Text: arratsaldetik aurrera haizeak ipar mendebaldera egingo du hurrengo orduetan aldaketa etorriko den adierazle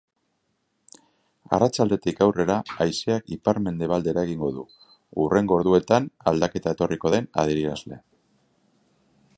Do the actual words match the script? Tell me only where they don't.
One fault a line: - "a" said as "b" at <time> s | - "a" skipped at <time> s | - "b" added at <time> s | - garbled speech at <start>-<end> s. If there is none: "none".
none